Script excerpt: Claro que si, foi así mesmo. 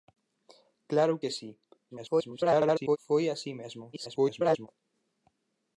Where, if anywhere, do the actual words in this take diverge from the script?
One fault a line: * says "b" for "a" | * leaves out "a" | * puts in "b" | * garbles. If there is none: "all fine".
* garbles
* garbles